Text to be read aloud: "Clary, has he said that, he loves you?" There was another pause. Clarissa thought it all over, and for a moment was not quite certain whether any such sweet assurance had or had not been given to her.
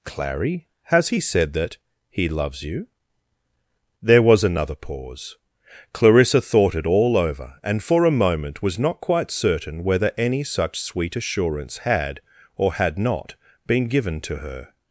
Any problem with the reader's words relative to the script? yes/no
no